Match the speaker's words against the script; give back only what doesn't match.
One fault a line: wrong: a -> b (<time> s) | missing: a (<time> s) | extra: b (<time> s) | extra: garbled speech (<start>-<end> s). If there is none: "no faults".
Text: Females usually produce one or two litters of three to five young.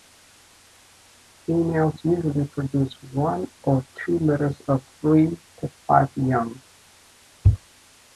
no faults